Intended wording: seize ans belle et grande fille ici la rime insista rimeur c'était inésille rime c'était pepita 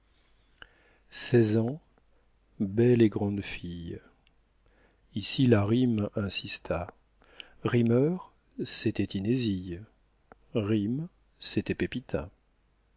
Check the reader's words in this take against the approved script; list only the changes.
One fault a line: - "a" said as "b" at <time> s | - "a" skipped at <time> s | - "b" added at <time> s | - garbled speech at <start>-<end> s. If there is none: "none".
none